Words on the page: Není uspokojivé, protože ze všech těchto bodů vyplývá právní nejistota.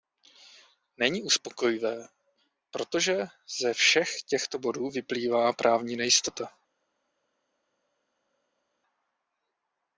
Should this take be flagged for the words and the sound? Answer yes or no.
no